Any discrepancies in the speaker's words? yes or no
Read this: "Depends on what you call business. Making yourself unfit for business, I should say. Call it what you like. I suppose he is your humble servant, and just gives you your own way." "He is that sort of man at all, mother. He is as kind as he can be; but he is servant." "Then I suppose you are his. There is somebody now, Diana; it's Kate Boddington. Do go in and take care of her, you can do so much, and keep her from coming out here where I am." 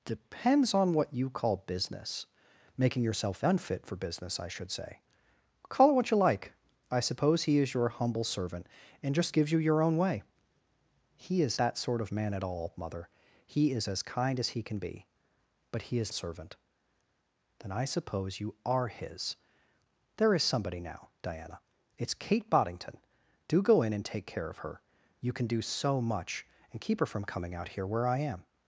no